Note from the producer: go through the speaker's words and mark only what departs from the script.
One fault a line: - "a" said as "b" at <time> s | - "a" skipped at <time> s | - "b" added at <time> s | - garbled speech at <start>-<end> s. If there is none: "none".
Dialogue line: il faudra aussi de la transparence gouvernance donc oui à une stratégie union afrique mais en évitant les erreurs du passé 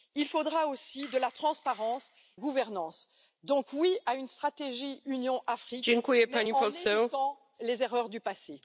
none